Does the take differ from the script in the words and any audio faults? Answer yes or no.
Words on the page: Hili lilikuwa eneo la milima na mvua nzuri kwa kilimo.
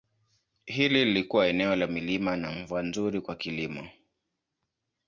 no